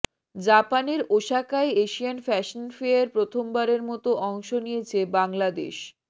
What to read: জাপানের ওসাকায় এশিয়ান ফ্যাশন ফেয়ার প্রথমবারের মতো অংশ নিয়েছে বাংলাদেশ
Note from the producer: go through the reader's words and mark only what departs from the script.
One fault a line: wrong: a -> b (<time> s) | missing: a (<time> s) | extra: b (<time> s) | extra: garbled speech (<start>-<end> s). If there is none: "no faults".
no faults